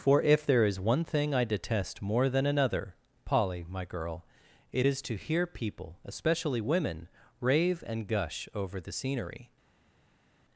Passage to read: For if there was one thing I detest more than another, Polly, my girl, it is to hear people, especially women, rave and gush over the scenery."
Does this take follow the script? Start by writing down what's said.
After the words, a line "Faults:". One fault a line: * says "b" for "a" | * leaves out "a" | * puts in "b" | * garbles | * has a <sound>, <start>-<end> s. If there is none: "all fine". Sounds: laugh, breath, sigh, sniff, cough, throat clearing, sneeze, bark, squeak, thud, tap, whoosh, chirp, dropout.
For if there is one thing I detest more than another, Polly, my girl, it is to hear people, especially women, rave and gush over the scenery."
Faults:
* says "is" for "was"